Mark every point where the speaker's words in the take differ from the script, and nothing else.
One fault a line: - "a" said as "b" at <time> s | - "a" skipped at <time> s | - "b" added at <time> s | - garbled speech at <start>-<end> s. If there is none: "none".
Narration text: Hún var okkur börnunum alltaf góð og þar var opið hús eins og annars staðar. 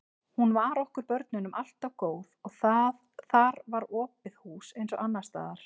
none